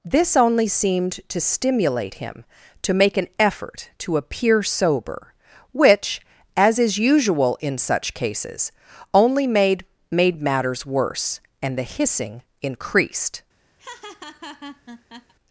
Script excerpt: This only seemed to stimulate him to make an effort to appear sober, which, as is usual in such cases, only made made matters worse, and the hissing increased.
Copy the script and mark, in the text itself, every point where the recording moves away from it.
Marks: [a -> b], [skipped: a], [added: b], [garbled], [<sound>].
This only seemed to stimulate him to make an effort to appear sober, which, as is usual in such cases, only made made matters worse, and the hissing increased. [laugh]